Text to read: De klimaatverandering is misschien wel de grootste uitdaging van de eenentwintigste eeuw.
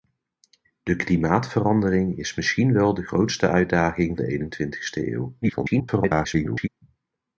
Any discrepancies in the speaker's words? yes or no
yes